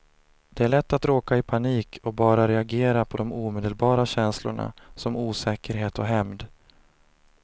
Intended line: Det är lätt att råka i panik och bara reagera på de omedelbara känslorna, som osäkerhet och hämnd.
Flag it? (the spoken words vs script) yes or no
no